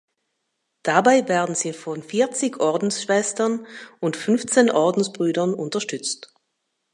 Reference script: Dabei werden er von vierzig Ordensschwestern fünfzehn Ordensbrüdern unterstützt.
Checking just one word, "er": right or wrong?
wrong